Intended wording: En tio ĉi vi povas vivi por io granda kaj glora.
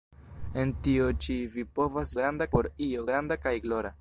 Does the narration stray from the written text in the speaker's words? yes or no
yes